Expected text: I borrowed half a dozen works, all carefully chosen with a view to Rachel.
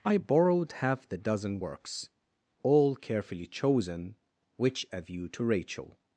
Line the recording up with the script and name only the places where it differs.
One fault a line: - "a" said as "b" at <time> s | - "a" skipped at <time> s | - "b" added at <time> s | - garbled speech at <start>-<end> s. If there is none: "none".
- "a" said as "the" at 1.1 s
- "with" said as "which" at 4.6 s